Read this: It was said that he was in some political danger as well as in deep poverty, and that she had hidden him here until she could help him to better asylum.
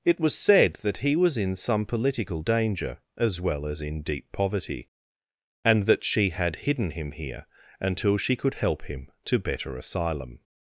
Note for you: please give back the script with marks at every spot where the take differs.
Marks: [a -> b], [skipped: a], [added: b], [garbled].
It was said that he was in some political danger as well as in deep poverty, and that she had hidden him here until she could help him to better asylum.